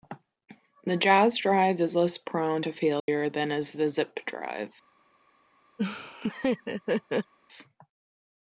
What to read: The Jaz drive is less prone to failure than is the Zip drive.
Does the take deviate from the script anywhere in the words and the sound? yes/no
yes